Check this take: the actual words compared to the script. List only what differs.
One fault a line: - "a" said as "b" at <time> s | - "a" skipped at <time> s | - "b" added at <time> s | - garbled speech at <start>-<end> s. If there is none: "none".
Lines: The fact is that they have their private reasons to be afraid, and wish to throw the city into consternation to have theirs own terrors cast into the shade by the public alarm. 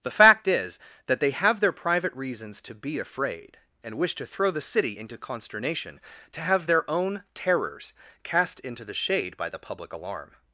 - "theirs" said as "their" at 6.6 s